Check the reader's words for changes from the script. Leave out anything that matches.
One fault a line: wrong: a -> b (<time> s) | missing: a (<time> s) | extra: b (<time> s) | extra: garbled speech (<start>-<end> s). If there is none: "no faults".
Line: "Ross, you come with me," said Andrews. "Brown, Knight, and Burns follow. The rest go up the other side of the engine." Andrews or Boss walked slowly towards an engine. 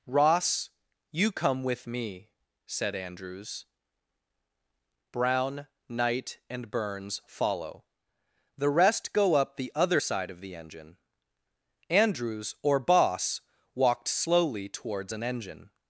no faults